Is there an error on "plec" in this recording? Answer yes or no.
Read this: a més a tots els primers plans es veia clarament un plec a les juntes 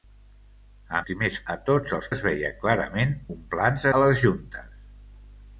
yes